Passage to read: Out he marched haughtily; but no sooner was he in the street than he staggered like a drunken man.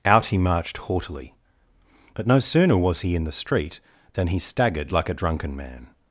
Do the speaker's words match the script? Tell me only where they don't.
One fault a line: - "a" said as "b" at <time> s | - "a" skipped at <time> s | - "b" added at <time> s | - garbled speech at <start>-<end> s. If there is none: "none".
none